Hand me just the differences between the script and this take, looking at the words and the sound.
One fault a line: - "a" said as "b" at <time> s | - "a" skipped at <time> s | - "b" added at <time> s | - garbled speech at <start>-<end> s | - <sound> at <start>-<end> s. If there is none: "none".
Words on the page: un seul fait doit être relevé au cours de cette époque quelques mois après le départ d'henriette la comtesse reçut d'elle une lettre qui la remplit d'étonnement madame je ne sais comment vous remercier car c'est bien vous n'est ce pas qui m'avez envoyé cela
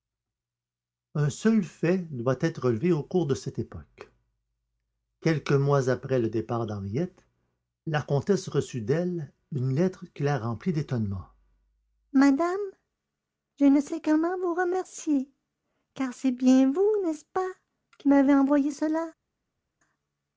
none